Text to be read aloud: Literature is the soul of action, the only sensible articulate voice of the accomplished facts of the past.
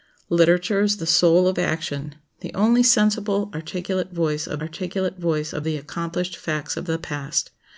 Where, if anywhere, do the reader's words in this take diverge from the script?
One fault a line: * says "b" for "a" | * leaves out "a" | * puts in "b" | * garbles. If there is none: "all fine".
* puts in "articulate voice of"